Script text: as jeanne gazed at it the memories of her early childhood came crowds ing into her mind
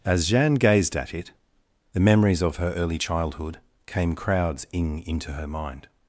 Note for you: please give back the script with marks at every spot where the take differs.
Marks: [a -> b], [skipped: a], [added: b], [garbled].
as jeanne gazed at it the memories of her early childhood came crowds ing into her mind